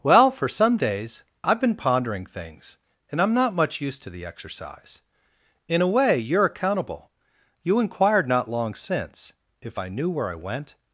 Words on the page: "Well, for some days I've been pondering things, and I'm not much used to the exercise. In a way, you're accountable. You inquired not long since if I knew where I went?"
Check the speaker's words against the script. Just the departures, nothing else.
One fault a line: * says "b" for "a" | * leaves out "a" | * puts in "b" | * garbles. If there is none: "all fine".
all fine